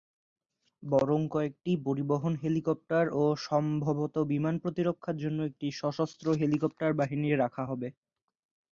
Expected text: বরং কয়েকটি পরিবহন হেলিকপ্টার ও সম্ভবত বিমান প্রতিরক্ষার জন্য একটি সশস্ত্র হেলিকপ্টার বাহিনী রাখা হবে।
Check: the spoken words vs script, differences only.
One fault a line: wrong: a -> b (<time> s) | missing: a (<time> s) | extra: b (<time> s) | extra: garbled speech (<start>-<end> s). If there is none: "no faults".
no faults